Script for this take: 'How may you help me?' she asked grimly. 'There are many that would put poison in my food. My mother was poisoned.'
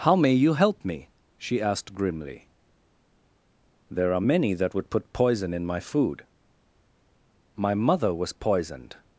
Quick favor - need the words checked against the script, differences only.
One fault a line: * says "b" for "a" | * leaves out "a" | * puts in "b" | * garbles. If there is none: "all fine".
all fine